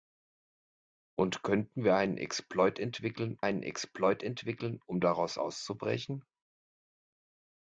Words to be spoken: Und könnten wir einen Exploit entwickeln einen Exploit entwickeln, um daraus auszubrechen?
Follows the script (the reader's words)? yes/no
yes